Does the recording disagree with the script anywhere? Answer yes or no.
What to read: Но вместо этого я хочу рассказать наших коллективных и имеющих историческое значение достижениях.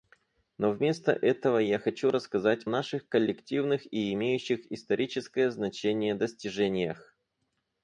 no